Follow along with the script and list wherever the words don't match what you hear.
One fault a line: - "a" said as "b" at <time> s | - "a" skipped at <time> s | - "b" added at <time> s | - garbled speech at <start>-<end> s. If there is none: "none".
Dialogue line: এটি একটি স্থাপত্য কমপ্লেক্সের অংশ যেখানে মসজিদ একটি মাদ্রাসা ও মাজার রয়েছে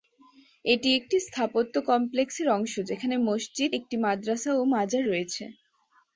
none